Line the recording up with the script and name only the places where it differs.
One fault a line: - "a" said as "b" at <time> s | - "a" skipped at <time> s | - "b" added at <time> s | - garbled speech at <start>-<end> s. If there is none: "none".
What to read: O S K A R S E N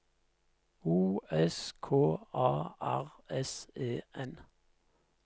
none